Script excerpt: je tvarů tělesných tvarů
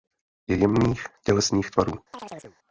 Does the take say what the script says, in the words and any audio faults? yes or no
no